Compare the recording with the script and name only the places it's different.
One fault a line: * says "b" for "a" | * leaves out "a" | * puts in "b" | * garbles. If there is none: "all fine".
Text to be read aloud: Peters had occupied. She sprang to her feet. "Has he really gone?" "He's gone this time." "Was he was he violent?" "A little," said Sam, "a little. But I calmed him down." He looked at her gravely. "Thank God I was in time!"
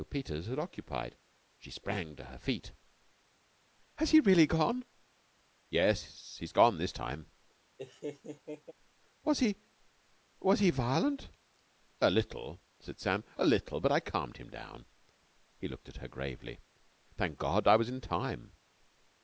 * puts in "Yes"